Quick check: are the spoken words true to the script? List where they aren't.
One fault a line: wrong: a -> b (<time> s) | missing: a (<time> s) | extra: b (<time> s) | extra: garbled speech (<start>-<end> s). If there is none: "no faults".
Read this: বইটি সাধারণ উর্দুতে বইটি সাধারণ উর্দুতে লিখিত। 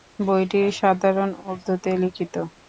missing: বইটি সাধারণ উর্দুতে (1.9 s)